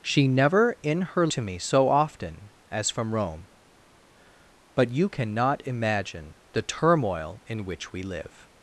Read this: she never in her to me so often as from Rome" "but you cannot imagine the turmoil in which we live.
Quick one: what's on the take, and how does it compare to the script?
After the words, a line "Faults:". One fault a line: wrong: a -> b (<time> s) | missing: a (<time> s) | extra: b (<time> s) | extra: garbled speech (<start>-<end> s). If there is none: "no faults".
she never in her to me so often as from Rome" "but you cannot imagine the turmoil in which we live.
Faults:
no faults